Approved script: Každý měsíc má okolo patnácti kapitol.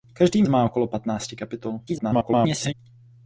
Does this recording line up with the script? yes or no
no